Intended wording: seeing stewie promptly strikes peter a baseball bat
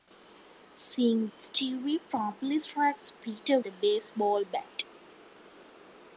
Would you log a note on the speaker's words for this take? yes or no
no